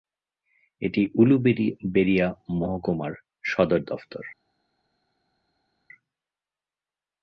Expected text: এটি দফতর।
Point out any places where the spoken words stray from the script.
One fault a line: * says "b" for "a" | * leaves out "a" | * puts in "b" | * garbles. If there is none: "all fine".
* puts in "উলুবেড়িয়া মহকুমার সদর"